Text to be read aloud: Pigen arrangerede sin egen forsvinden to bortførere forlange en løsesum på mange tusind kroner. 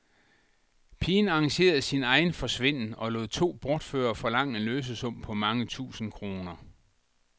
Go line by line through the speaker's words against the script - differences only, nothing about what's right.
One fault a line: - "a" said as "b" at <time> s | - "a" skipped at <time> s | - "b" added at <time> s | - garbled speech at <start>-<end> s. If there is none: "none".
- "og lod" added at 3.0 s